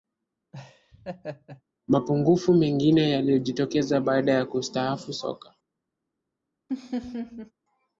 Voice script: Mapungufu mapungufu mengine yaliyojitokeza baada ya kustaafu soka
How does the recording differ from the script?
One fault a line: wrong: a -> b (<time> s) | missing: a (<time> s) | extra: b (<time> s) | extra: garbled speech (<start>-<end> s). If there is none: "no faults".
missing: mapungufu (2.5 s)